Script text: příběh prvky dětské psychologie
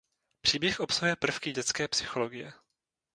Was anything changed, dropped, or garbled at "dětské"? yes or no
no